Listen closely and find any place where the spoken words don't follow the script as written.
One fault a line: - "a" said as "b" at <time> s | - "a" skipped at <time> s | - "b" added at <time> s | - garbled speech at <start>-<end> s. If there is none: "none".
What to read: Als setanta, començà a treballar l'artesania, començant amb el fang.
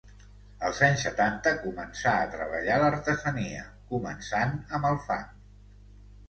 - "anys" added at 0.8 s